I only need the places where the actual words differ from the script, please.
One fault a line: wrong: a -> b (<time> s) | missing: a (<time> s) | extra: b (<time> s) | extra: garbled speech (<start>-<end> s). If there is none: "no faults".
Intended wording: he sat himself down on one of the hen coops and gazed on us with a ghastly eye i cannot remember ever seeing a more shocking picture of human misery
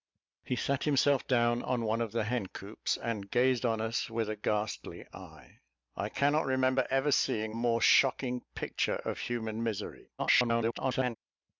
missing: a (7.5 s)
extra: garbled speech (10.2-11.2 s)